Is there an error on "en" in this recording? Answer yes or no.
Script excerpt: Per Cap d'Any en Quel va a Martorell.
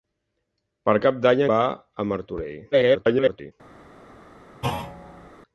yes